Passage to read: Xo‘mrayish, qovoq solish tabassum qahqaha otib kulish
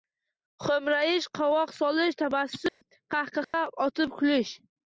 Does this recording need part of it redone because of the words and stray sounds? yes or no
yes